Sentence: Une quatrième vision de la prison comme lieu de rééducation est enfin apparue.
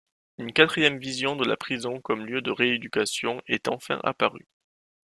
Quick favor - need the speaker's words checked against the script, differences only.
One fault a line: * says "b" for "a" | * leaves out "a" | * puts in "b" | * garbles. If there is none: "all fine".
all fine